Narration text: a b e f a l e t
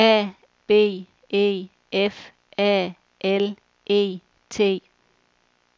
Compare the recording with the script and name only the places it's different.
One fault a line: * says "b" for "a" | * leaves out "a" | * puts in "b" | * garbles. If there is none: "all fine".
all fine